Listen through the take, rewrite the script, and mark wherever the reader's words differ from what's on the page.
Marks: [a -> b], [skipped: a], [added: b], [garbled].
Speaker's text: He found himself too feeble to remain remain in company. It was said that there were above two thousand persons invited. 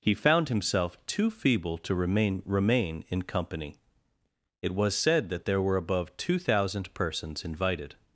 He found himself too feeble to remain remain in company. It was said that there were above two thousand persons invited.